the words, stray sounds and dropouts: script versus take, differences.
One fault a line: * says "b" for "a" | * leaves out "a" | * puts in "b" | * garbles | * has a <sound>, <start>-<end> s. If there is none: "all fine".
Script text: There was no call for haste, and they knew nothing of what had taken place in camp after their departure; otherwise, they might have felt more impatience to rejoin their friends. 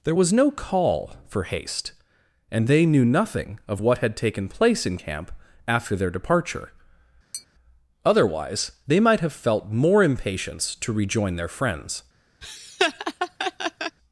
* has a tap, 7.3-7.5 s
* has a laugh, 12.4-14.0 s